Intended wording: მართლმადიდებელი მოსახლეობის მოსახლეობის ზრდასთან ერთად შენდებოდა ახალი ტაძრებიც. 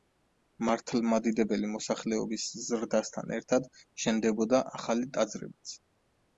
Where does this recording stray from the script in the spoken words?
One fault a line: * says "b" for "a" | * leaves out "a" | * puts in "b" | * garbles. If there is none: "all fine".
* leaves out "მოსახლეობის"